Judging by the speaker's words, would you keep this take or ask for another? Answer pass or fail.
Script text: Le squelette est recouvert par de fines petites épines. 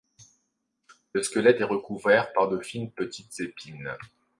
pass